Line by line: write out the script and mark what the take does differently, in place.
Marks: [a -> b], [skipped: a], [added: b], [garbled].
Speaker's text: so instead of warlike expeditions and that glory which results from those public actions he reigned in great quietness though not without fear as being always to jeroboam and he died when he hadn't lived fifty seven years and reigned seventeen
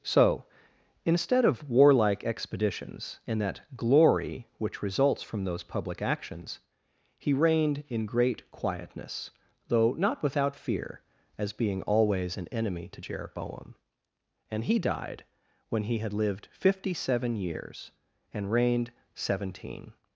so instead of warlike expeditions and that glory which results from those public actions he reigned in great quietness though not without fear as being always [added: an enemy] to jeroboam and he died when he [hadn't -> had] lived fifty seven years and reigned seventeen